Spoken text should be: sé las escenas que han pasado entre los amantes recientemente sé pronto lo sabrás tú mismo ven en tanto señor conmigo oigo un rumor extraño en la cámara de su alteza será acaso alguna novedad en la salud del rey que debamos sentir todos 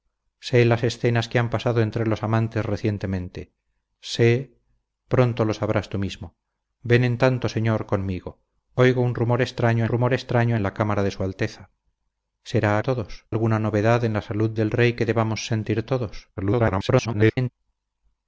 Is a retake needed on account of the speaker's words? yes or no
yes